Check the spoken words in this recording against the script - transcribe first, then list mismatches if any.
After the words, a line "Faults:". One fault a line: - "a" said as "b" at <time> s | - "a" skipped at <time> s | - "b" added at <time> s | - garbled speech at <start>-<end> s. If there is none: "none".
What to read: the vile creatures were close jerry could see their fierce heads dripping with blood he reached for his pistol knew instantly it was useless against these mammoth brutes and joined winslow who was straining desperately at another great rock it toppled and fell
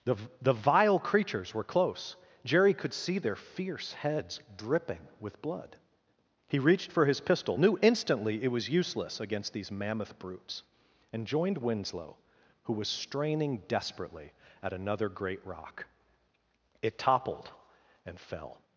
the the vile creatures were close jerry could see their fierce heads dripping with blood he reached for his pistol knew instantly it was useless against these mammoth brutes and joined winslow who was straining desperately at another great rock it toppled and fell
Faults:
- "the" added at 0.4 s